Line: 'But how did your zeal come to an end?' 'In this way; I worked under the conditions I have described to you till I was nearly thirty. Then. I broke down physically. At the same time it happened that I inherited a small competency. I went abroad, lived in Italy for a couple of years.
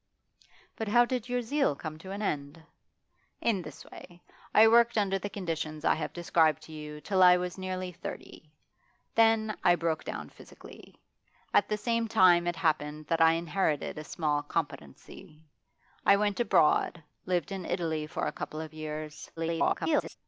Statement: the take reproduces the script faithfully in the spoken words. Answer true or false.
false